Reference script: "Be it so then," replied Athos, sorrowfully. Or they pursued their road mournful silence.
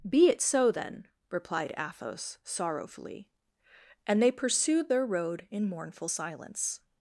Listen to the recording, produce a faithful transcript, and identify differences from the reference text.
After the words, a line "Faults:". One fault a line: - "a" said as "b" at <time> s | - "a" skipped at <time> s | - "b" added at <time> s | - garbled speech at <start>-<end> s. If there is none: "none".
"Be it so then," replied Athos, sorrowfully. And they pursued their road in mournful silence.
Faults:
- "Or" said as "And" at 4.1 s
- "in" added at 5.5 s